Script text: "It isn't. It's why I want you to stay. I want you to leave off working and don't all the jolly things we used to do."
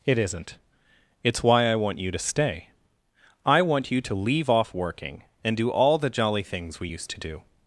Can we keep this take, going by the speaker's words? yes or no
no